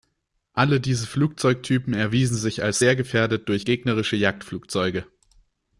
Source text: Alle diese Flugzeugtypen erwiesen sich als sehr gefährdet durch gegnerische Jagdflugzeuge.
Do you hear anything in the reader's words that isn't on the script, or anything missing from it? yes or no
no